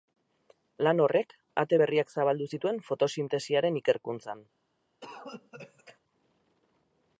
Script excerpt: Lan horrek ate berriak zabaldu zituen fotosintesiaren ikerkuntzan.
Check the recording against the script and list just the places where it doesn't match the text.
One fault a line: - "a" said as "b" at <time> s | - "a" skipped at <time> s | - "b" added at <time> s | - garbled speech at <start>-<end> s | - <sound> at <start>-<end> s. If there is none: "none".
- cough at 5.0-6.0 s